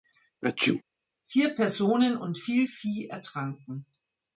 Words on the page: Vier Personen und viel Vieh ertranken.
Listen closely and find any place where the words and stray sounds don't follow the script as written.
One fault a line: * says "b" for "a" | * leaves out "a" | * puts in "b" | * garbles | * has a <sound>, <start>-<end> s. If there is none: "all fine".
* has a sneeze, 0.4-0.8 s